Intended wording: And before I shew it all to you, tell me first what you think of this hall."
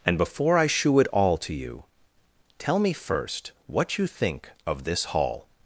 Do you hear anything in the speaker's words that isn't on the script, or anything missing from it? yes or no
no